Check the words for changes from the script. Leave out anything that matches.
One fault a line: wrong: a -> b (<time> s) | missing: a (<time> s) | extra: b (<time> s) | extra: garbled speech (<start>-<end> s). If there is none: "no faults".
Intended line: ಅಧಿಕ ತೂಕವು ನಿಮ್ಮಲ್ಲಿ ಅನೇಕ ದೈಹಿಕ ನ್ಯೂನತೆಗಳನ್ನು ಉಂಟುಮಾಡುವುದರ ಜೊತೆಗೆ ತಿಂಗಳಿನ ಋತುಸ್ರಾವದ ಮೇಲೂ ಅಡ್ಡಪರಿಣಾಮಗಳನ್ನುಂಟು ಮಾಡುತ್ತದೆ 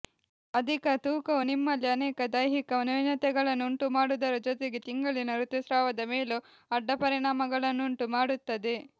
no faults